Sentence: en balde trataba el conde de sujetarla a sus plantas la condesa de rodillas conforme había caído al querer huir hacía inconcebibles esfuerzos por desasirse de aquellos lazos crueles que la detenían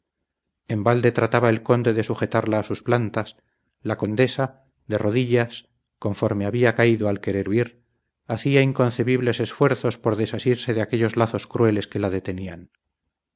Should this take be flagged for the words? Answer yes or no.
no